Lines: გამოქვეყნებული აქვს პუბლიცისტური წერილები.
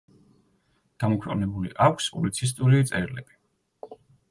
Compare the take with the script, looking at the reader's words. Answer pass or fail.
pass